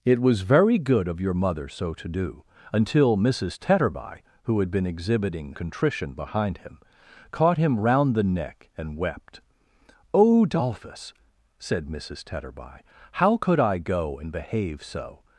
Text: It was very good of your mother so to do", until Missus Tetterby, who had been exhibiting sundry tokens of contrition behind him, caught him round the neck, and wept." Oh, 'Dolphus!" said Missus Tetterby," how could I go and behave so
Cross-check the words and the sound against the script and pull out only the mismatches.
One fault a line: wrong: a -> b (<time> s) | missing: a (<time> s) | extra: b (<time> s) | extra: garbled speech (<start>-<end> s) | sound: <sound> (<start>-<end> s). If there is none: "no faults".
missing: sundry tokens of (5.5 s)